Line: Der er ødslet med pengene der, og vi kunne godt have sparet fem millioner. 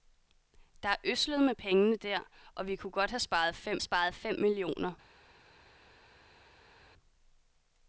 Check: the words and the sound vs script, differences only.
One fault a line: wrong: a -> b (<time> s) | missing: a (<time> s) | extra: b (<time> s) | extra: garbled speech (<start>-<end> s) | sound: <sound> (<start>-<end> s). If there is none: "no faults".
extra: sparet fem (3.8 s)